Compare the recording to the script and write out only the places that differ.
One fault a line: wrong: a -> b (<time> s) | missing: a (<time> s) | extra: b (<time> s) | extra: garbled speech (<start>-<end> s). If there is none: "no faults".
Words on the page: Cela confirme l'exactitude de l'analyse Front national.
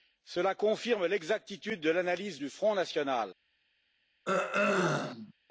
extra: du (2.4 s)